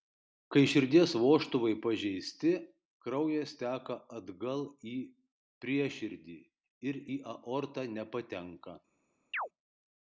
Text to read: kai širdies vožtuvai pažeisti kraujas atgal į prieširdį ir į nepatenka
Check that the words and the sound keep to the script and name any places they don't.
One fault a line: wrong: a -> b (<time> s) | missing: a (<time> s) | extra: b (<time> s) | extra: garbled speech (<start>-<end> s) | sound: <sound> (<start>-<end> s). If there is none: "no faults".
extra: teka (3.6 s)
extra: aortą (7.3 s)
sound: chirp (9.3-9.5 s)